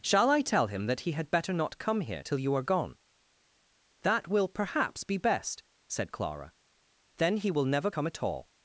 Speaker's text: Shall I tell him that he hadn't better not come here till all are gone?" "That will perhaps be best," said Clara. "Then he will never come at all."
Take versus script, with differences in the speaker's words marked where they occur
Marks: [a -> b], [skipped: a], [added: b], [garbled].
Shall I tell him that he [hadn't -> had] better not come here till [all -> you] are gone?" "That will perhaps be best," said Clara. "Then he will never come at all."